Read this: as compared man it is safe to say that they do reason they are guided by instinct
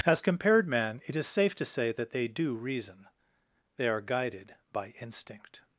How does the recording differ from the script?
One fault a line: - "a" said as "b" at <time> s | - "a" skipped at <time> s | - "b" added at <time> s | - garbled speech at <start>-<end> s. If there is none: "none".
none